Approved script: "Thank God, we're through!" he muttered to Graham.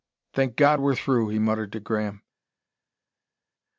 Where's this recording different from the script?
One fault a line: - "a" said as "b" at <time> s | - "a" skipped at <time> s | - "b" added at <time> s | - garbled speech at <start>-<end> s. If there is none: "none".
none